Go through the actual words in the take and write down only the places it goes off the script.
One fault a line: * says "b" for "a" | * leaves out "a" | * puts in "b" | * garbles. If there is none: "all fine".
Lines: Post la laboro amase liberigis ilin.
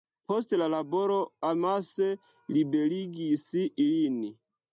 all fine